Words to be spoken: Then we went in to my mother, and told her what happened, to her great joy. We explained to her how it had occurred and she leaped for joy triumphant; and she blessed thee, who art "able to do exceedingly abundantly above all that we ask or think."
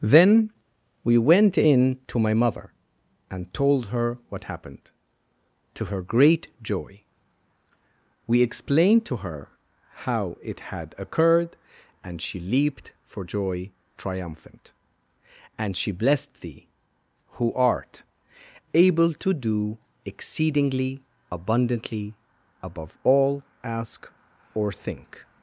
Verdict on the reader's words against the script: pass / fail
fail